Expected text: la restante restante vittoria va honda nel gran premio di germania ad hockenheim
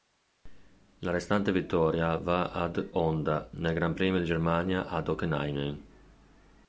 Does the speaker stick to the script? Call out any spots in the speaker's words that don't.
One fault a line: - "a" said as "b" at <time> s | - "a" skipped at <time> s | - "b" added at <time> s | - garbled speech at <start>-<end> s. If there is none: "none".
- "restante" skipped at 1.5 s
- "ad" added at 2.5 s